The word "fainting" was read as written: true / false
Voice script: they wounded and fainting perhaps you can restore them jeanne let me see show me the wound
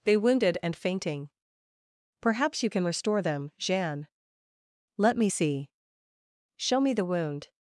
true